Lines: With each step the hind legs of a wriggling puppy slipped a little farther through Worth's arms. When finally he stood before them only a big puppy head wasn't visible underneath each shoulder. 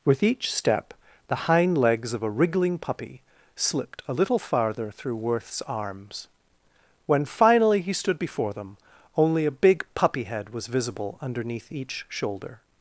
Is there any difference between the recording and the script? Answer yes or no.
yes